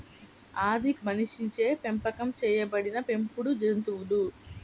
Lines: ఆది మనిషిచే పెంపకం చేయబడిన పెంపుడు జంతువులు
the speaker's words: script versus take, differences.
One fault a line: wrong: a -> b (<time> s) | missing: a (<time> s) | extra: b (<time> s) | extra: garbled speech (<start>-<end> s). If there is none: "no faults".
no faults